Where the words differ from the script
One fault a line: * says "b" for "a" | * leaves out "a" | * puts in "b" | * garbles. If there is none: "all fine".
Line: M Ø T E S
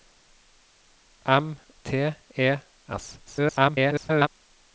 * leaves out "Ø"
* garbles